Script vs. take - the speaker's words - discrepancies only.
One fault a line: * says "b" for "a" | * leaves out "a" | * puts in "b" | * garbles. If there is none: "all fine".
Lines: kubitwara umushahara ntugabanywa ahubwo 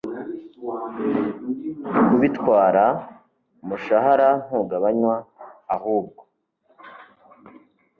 all fine